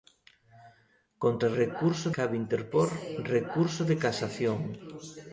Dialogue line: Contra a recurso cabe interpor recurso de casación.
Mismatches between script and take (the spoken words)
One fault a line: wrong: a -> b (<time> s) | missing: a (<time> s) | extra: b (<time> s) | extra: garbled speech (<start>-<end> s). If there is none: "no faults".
no faults